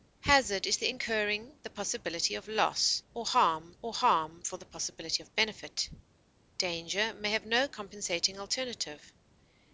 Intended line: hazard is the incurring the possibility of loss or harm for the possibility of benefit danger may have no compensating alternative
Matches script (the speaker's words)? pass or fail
fail